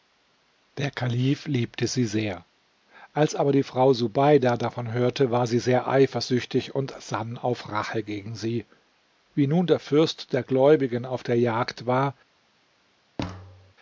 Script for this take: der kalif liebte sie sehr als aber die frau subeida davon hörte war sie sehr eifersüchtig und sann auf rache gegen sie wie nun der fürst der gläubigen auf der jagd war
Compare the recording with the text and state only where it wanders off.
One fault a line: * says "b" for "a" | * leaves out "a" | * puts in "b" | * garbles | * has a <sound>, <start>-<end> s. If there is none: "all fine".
* has a thud, 13.2-13.7 s